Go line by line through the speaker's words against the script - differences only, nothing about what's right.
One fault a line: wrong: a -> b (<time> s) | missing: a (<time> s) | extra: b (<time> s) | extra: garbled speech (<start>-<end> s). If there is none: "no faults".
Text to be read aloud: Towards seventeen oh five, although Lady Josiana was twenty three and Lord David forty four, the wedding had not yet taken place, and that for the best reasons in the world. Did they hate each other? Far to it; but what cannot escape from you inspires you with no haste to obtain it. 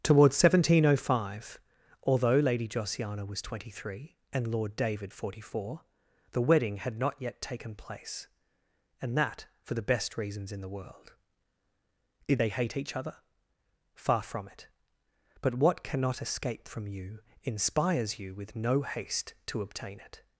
wrong: to -> from (14.2 s)